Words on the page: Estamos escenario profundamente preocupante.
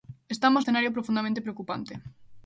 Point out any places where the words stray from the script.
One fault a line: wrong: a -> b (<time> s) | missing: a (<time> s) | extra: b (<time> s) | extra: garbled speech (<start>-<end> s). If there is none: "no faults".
no faults